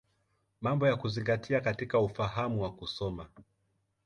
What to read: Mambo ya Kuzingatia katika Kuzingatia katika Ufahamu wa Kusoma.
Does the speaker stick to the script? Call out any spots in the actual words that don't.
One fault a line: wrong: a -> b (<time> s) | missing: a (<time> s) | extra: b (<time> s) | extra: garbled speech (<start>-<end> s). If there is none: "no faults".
missing: Kuzingatia katika (2.0 s)